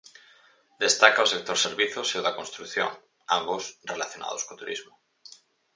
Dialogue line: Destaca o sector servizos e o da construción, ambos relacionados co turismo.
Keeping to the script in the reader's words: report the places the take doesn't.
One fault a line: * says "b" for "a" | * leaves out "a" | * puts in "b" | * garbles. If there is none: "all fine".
all fine